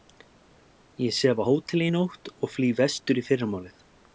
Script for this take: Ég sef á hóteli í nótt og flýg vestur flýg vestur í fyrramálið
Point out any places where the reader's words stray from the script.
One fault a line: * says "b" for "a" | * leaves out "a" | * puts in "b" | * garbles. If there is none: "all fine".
* leaves out "flýg vestur"